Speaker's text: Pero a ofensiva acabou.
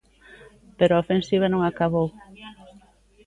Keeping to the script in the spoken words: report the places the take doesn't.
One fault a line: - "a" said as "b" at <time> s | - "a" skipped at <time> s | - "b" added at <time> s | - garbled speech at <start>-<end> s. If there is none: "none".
- "non" added at 1.5 s